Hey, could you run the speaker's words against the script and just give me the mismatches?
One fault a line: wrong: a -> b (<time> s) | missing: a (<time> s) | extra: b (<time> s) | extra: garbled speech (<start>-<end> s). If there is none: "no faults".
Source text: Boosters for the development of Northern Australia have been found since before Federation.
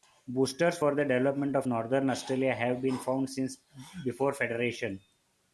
no faults